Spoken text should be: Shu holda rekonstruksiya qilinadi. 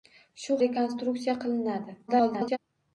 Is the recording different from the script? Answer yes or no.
yes